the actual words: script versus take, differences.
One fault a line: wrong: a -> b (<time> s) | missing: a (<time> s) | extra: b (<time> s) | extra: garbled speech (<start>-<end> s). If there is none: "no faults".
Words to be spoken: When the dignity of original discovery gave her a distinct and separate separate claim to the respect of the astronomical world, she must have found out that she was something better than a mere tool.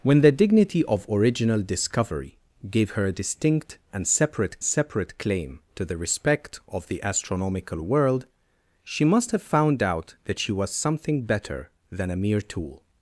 no faults